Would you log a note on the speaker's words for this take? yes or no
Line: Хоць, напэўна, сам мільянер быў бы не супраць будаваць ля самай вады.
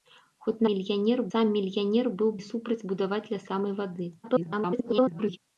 yes